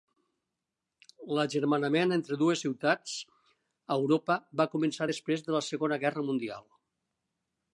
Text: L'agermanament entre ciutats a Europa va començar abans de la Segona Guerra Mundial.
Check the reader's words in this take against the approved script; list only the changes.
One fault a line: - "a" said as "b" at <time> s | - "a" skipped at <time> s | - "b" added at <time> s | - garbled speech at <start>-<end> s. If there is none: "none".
- "dues" added at 2.4 s
- "abans" said as "després" at 5.1 s